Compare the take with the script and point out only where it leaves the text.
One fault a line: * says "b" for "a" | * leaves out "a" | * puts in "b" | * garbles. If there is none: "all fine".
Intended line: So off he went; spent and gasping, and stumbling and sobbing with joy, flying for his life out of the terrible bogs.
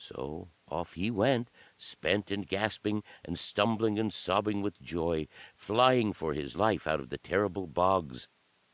all fine